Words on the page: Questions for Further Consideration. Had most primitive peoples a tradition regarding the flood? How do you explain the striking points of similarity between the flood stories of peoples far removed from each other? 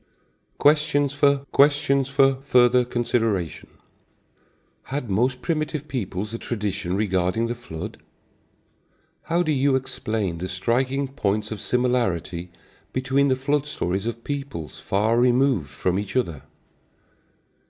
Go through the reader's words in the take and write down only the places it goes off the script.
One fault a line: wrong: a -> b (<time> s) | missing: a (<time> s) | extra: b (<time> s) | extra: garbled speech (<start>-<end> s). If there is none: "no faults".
extra: questions for (1.5 s)